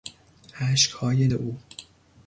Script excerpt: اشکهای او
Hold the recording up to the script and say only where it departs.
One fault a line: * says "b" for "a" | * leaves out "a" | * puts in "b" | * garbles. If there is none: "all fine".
all fine